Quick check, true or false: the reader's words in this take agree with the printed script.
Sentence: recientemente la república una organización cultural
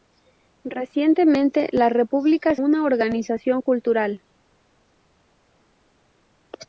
true